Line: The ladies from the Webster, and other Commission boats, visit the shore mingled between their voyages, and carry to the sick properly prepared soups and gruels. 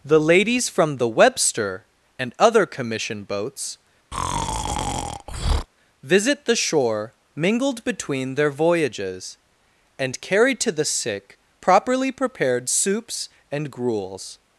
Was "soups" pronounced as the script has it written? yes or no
yes